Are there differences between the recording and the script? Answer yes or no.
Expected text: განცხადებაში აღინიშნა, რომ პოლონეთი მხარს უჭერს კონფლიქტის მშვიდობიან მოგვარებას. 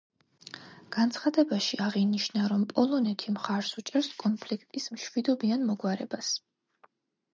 no